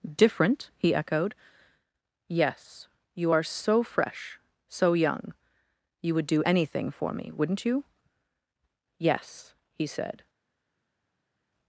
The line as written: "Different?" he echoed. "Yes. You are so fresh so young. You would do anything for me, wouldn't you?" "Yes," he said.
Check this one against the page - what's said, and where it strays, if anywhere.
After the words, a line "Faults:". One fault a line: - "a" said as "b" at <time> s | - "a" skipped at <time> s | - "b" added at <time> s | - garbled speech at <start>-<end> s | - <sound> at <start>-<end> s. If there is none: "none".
"Different?" he echoed. "Yes. You are so fresh so young. You would do anything for me, wouldn't you?" "Yes," he said.
Faults:
none